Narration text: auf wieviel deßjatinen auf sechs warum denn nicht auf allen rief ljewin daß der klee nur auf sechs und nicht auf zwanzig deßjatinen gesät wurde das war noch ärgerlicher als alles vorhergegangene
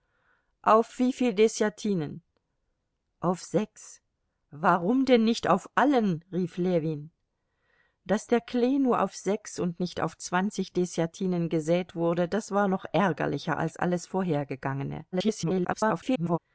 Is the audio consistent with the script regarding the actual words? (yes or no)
no